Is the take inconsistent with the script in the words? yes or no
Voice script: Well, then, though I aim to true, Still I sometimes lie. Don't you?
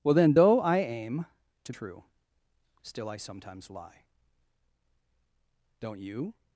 no